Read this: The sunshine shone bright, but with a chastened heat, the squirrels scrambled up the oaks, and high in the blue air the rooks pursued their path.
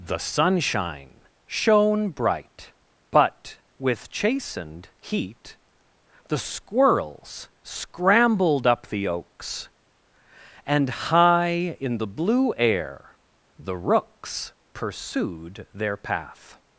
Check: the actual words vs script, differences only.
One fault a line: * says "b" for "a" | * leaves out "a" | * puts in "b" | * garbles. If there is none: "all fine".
* leaves out "a"